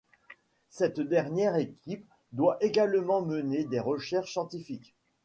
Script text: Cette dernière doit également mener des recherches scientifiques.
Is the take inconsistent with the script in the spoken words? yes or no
yes